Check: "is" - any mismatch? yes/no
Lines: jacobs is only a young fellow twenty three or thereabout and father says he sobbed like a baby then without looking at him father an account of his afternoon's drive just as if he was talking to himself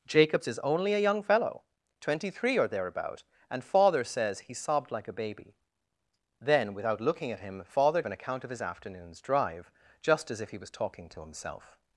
no